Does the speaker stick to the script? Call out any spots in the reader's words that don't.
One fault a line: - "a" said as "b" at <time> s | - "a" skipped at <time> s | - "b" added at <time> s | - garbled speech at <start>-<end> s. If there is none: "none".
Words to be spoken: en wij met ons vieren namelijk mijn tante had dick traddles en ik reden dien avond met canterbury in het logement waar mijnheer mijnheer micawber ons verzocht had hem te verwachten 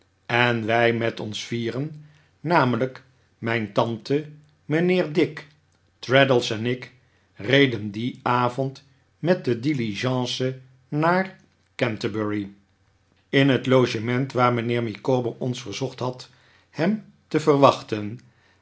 - "had" said as "mijnheer" at 4.7 s
- "de diligence naar" added at 9.4 s
- "mijnheer" skipped at 14.8 s